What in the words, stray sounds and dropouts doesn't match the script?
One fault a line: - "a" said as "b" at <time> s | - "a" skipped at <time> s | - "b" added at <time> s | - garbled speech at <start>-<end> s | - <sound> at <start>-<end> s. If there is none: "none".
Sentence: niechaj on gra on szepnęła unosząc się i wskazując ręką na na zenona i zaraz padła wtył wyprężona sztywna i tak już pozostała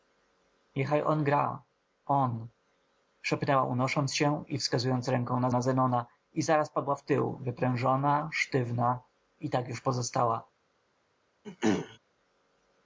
- throat clearing at 11.4-12.0 s